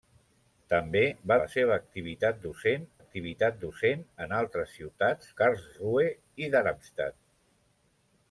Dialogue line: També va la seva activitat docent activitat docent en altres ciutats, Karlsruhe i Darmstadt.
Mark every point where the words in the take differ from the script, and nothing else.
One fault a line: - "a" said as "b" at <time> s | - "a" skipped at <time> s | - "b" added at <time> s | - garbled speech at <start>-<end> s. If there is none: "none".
none